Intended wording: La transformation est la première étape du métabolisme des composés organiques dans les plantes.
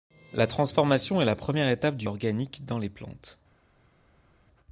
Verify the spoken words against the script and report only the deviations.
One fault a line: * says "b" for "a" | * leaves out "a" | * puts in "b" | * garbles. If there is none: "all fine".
* leaves out "métabolisme des composés"